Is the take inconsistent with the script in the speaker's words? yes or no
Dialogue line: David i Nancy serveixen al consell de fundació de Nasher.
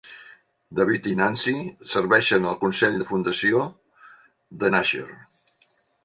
no